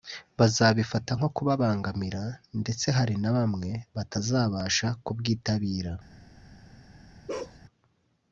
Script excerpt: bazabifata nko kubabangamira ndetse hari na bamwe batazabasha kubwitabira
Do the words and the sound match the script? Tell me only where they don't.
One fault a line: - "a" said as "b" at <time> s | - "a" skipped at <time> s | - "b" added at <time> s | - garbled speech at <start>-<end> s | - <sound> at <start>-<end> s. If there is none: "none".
- bark at 7.3-7.6 s